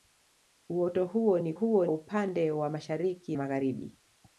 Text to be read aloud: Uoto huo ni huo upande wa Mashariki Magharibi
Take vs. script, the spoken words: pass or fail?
pass